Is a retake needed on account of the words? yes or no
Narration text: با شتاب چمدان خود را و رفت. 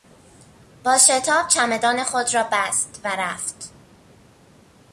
yes